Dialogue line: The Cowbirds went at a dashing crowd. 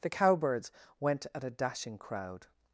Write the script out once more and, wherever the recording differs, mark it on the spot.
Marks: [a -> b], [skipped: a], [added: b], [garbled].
The Cowbirds went at a dashing crowd.